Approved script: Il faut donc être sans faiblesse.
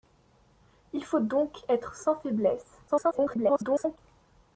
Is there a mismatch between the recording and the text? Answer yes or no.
yes